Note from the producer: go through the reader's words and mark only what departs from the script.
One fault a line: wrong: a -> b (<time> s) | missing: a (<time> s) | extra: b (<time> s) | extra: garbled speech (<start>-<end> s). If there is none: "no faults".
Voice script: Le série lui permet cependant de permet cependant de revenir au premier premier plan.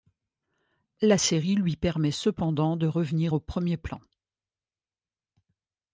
wrong: Le -> La (1.0 s)
missing: permet cependant de (2.9 s)
missing: premier (3.8 s)